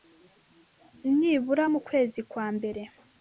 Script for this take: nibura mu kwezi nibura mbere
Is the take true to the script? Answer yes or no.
no